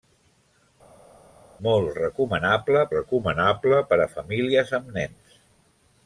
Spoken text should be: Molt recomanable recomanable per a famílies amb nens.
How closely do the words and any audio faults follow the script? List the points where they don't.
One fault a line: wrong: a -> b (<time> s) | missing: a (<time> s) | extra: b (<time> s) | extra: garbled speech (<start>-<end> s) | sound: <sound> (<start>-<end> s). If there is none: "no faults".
no faults